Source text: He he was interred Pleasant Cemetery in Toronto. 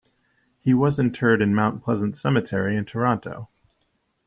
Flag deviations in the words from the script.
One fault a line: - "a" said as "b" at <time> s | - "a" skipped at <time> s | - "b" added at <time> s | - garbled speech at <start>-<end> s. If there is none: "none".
- "he" skipped at 0.7 s
- "in Mount" added at 1.4 s